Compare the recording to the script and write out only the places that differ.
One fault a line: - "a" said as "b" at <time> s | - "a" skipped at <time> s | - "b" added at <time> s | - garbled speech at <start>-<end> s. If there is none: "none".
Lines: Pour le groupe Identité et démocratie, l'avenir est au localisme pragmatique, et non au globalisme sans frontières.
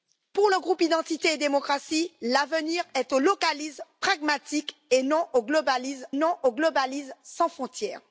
- "non au globalisme" added at 6.1 s